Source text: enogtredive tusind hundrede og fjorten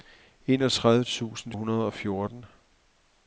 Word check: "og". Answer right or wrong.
right